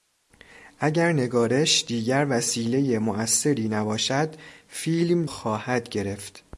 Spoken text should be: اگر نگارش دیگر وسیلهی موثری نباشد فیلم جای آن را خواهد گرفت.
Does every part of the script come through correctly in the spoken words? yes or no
no